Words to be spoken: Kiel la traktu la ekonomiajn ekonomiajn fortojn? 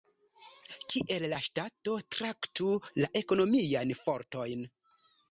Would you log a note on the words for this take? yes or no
yes